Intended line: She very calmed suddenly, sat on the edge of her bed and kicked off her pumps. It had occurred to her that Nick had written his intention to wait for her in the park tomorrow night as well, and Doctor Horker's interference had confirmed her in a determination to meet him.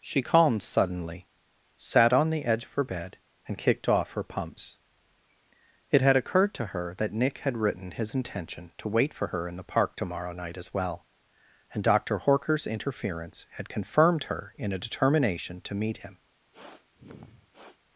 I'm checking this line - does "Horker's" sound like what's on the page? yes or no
yes